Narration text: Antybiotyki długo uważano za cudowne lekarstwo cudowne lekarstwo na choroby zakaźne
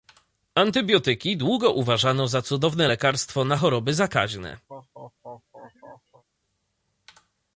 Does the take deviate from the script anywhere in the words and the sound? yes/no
yes